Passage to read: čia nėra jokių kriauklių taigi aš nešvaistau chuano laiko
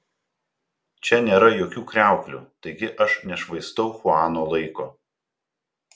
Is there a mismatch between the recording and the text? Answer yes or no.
no